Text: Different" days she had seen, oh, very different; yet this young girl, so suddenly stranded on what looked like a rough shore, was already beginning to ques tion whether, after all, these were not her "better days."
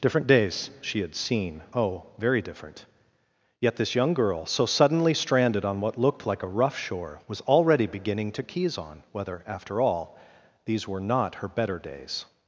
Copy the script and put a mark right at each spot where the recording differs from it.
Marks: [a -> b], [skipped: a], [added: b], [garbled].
Different" days she had seen, oh, very different; yet this young girl, so suddenly stranded on what looked like a rough shore, was already beginning to [ques tion -> keys on] whether, after all, these were not her "better days."